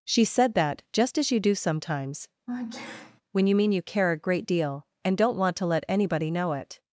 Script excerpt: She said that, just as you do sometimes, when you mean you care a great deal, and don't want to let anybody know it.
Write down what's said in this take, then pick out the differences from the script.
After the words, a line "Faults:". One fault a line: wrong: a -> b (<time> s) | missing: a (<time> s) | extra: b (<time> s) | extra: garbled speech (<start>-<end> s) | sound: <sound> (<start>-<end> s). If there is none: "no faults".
She said that, just as you do sometimes, when you mean you care a great deal, and don't want to let anybody know it.
Faults:
sound: sneeze (2.5-3.2 s)